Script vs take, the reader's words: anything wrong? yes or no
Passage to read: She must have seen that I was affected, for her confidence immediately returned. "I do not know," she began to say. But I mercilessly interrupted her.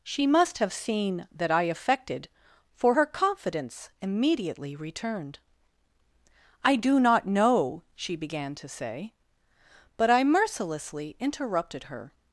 yes